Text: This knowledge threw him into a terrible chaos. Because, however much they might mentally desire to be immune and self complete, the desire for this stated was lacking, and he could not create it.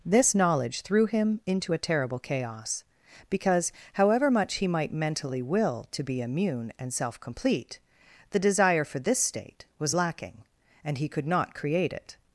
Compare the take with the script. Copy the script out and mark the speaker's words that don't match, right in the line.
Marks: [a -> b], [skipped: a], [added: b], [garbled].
This knowledge threw him into a terrible chaos. Because, however much [they -> he] might mentally [desire -> will] to be immune and self complete, the desire for this [stated -> state] was lacking, and he could not create it.